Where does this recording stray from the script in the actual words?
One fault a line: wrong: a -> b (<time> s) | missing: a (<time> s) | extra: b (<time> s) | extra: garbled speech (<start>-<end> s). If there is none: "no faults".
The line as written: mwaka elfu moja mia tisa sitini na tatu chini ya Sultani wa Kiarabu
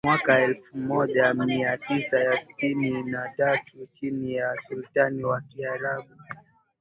no faults